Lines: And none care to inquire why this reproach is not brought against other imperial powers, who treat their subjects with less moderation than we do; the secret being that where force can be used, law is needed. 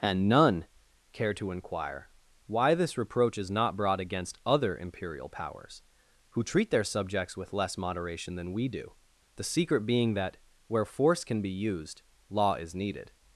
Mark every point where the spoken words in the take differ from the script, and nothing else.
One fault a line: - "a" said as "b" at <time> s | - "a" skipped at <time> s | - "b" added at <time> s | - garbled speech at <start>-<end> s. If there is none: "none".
none